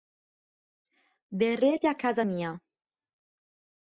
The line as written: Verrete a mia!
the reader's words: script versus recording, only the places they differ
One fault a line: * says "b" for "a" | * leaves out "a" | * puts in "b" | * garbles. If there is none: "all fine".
* puts in "casa"